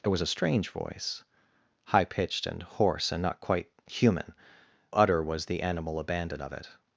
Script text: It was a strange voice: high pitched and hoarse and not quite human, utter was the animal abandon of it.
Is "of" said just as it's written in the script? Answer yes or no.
yes